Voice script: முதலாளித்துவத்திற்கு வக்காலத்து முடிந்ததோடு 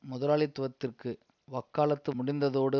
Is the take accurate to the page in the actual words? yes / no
yes